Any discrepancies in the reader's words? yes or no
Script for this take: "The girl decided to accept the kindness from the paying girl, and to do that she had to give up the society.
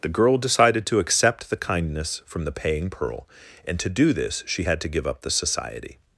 yes